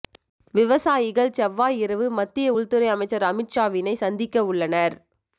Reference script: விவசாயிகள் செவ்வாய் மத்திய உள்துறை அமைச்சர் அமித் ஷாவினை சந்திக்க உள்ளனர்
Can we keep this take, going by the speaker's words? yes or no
no